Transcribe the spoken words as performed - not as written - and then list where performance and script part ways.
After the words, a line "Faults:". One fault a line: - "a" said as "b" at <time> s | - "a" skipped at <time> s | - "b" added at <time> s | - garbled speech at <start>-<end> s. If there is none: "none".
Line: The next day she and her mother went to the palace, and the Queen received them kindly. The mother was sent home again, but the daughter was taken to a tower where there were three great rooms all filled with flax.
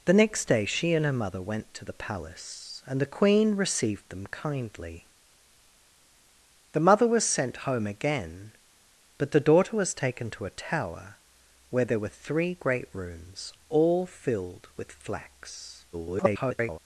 The next day she and her mother went to the palace, and the Queen received them kindly. The mother was sent home again, but the daughter was taken to a tower where there were three great rooms all filled with flax. [garbled]
Faults:
- garbled speech at 15.9-16.8 s